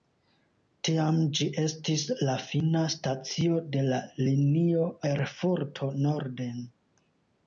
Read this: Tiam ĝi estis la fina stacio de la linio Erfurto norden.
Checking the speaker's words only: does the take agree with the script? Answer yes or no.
yes